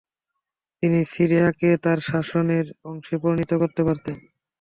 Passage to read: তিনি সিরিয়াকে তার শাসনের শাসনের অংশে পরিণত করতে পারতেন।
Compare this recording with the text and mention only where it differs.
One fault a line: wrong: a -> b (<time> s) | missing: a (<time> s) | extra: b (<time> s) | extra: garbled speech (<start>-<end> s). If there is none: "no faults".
missing: শাসনের (2.6 s)